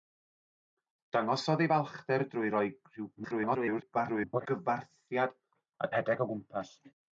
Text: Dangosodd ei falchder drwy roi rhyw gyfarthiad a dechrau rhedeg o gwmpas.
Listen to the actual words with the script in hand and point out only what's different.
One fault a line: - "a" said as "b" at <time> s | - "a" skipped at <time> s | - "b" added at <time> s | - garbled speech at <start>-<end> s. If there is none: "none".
- garbled speech at 3.2-4.5 s
- "dechrau" skipped at 5.9 s